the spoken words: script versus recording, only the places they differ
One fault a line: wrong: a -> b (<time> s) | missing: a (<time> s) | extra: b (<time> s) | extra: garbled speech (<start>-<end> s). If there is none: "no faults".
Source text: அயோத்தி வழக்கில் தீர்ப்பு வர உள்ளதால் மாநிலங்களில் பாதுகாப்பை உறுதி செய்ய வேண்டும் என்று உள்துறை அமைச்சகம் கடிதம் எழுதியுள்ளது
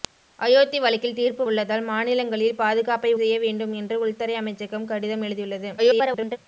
missing: வர (1.4 s)
missing: உறுதி (3.1 s)
extra: garbled speech (5.8-6.4 s)